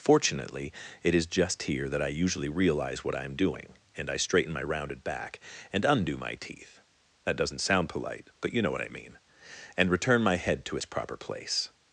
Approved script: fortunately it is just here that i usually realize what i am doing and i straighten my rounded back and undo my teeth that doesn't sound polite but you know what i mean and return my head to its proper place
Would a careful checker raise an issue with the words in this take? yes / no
no